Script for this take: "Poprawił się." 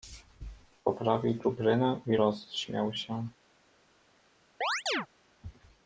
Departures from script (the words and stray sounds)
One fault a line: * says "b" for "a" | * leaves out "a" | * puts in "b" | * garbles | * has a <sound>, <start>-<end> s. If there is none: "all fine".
* puts in "czuprynę i rozśmiał"
* has a chirp, 4.6-5.1 s